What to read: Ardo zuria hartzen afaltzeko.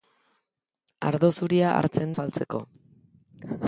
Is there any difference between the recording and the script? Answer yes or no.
no